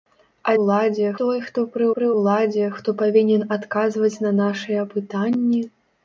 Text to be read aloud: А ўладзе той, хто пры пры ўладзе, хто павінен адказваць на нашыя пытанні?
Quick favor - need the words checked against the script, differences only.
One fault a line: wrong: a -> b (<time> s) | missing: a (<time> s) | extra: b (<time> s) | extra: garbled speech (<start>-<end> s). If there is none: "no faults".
no faults